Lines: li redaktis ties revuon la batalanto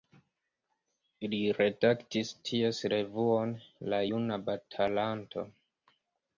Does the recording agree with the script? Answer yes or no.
no